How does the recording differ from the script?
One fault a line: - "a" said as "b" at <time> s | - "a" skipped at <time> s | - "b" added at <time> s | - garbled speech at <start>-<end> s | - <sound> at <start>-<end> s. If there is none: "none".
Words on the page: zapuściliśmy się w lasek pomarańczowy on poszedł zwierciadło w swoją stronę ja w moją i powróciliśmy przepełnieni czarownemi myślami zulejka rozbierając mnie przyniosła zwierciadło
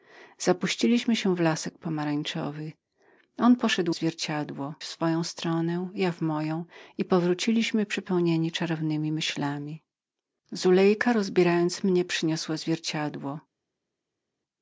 none